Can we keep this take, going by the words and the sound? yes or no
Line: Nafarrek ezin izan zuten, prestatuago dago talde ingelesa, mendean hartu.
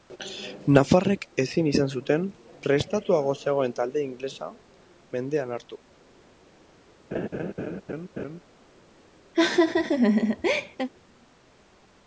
no